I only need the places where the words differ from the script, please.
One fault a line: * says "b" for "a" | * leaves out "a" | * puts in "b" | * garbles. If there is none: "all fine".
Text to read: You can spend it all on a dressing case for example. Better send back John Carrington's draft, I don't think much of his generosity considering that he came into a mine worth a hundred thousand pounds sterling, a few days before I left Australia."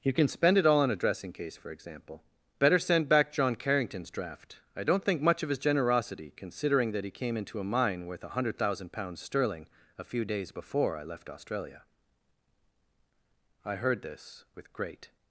* puts in "I heard this with great"